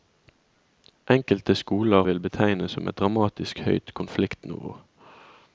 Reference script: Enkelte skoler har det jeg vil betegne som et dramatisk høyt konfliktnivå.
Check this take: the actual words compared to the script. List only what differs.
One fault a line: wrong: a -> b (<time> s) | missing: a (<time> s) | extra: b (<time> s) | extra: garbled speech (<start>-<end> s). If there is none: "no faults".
missing: har det jeg (2.0 s)